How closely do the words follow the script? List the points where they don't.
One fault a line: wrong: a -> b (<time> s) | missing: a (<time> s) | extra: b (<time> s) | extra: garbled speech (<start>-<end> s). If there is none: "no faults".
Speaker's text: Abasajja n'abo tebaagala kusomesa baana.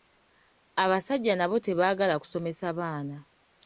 no faults